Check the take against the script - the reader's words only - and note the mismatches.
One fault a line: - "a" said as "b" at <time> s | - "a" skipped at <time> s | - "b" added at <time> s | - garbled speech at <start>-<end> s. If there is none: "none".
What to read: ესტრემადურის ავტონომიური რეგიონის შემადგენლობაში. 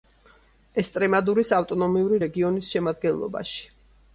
none